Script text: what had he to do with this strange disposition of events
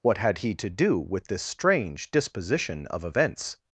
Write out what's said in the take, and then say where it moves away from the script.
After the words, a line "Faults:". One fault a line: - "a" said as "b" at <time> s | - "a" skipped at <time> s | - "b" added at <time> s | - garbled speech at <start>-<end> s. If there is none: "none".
what had he to do with this strange disposition of events
Faults:
none